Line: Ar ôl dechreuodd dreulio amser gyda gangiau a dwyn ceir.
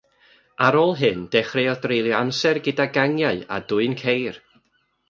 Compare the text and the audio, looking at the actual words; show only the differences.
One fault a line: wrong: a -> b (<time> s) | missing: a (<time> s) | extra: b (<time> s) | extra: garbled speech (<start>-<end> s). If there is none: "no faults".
extra: hyn (1.0 s)